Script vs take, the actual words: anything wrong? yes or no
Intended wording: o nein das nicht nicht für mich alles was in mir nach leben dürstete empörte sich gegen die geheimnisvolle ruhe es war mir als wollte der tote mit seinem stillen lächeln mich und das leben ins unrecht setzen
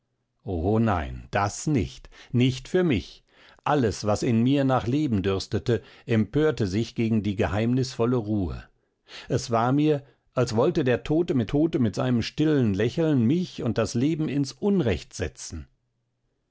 yes